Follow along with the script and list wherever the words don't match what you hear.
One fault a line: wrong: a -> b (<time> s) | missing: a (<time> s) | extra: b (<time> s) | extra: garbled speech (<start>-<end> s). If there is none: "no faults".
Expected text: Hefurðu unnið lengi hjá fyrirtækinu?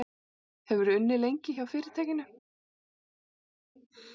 no faults